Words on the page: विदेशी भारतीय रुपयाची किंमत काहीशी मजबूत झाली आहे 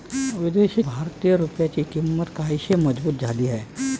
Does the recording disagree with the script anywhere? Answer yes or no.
no